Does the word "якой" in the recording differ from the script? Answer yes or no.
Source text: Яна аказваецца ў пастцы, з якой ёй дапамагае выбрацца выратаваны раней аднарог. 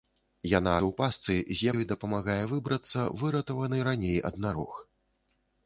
yes